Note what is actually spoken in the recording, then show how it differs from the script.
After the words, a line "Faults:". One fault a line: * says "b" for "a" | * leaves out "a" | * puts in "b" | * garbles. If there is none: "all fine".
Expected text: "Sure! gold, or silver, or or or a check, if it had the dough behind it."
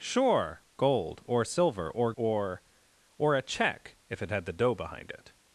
"Sure! gold, or silver, or or or a check, if it had the dough behind it."
Faults:
all fine